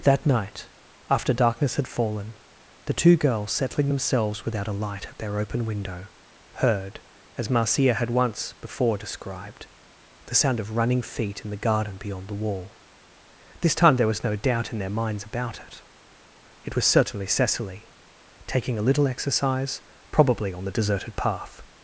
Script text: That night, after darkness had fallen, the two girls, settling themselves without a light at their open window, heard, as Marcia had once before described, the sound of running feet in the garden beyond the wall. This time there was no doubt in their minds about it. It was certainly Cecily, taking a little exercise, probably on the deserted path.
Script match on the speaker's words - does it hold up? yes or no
yes